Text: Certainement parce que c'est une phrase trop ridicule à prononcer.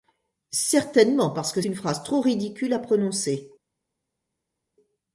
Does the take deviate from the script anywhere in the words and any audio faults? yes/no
yes